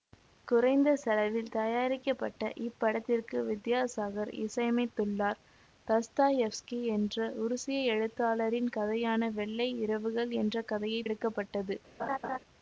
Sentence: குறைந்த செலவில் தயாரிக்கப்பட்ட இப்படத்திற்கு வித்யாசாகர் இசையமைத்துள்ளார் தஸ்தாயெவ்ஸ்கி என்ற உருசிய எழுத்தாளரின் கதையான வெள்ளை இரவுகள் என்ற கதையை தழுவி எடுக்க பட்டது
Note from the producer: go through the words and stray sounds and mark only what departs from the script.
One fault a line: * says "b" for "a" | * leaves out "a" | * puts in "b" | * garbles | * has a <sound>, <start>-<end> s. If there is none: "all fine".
* leaves out "தழுவி"
* has a laugh, 12.0-12.4 s